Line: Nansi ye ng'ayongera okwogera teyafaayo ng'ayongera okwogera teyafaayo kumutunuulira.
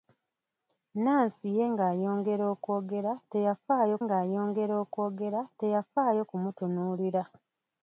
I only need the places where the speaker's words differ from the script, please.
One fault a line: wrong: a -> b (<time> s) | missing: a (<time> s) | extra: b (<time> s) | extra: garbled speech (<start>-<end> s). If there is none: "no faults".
no faults